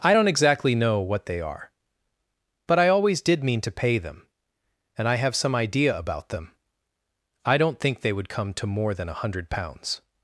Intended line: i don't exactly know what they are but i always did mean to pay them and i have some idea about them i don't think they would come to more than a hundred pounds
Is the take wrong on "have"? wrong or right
right